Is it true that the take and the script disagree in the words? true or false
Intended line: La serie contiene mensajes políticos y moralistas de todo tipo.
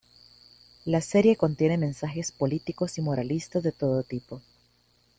false